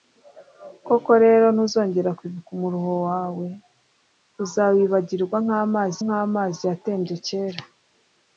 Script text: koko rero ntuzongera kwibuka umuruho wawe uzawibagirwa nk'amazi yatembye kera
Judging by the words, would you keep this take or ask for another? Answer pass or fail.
fail